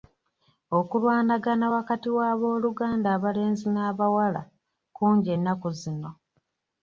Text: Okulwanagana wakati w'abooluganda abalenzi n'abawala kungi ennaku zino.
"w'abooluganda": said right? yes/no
yes